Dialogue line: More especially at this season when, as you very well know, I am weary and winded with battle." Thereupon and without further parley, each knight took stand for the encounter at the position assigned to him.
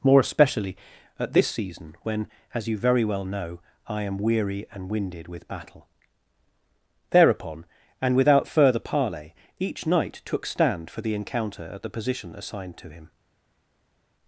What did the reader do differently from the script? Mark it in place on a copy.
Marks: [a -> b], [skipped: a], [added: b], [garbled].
More especially at this season when, as you very well know, I am weary and winded with battle." Thereupon and without further parley, each knight took stand for the encounter at the position assigned to him.